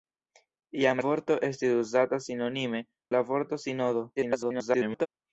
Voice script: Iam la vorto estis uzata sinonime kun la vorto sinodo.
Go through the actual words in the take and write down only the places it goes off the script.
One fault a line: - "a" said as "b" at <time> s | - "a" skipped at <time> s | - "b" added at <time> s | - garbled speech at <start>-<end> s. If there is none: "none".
- "la" skipped at 1.0 s
- "kun" skipped at 2.8 s
- garbled speech at 4.2-5.1 s